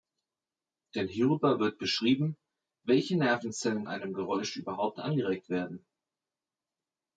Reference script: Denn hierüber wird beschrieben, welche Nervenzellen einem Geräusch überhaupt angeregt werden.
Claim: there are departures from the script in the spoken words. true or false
false